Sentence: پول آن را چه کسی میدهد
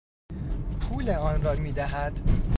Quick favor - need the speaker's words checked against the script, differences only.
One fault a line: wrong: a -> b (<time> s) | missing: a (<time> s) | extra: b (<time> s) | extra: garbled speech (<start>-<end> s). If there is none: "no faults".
missing: چه کسی (1.6 s)